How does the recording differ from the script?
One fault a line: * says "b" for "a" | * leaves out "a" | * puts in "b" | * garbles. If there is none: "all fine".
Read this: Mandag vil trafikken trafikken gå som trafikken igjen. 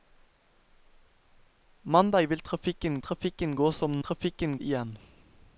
all fine